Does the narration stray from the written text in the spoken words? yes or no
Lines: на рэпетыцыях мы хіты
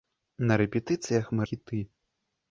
no